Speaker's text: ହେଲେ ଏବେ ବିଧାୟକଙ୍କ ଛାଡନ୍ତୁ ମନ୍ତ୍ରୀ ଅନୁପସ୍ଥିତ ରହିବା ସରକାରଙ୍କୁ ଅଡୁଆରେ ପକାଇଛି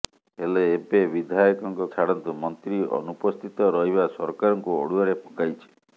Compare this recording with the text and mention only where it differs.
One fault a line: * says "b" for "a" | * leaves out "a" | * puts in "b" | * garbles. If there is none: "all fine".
all fine